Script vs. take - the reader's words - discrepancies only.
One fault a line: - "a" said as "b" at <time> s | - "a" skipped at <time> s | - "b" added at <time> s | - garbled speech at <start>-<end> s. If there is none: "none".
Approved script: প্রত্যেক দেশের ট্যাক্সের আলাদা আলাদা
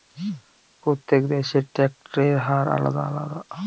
- "হার" added at 2.5 s